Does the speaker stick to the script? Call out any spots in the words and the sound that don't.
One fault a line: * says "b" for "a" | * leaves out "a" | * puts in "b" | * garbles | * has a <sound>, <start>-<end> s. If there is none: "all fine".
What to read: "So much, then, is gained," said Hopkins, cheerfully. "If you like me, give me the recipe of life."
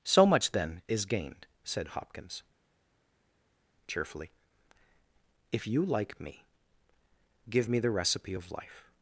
all fine